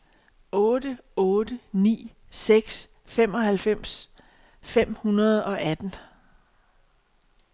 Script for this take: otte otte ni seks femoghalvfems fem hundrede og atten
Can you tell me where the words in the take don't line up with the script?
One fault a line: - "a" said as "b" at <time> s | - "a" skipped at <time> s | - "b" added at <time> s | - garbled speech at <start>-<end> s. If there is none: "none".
none